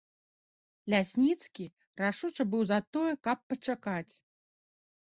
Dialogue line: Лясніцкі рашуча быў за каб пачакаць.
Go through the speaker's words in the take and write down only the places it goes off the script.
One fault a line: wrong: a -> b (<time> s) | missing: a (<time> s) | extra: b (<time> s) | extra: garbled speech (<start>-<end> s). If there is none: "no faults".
extra: тое (3.0 s)